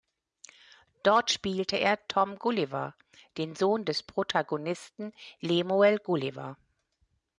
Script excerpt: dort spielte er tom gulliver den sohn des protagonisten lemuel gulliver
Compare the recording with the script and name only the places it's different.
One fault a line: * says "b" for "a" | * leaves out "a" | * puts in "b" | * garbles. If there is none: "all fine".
all fine